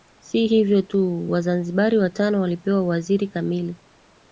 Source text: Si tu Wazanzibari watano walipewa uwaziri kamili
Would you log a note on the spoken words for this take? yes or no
yes